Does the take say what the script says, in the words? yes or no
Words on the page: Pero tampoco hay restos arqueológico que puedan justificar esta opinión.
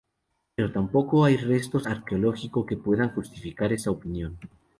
yes